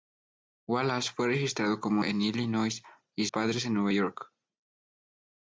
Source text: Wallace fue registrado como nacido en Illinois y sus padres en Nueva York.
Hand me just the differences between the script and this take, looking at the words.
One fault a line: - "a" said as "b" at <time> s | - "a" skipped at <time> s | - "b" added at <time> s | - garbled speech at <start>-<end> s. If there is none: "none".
- "nacido" skipped at 2.0 s
- "sus" skipped at 3.3 s